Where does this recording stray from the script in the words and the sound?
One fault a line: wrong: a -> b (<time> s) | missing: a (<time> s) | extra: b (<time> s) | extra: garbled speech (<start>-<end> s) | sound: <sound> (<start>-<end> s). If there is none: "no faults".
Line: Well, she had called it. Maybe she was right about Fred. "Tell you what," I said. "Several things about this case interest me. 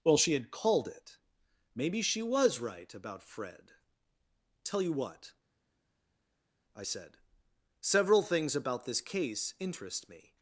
no faults